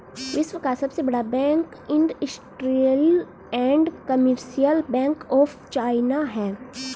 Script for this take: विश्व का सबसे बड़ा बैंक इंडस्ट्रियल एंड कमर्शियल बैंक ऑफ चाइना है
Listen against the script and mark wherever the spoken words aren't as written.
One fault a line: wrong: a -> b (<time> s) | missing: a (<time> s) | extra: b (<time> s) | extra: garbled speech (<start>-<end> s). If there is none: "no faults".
no faults